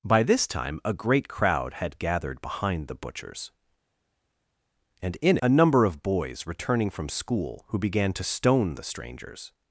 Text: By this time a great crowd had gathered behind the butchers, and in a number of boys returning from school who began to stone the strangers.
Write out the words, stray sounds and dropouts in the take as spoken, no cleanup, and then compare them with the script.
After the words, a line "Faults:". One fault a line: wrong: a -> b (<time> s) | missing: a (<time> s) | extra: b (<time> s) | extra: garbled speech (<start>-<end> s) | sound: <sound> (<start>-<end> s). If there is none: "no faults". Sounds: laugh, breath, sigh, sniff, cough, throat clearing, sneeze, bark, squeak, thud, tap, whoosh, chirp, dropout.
By this time a great crowd had gathered behind the butchers, and in a number of boys returning from school who began to stone the strangers.
Faults:
no faults